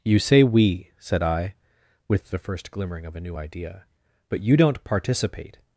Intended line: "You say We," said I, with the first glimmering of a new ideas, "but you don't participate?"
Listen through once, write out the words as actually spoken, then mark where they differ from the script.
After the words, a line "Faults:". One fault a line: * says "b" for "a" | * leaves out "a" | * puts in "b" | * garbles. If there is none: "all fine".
"You say We," said I, with the first glimmering of a new idea, "but you don't participate?"
Faults:
* says "idea" for "ideas"